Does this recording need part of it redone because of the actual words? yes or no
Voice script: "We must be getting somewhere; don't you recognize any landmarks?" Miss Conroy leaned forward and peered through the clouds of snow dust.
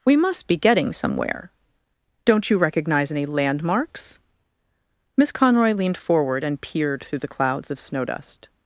no